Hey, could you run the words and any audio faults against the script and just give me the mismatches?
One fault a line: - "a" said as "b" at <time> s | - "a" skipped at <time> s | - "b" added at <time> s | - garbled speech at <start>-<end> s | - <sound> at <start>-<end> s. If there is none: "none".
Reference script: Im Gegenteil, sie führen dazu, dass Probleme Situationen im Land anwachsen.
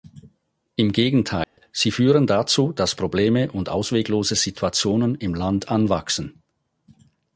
- dropout at 1.4-1.6 s
- "und ausweglose" added at 3.5 s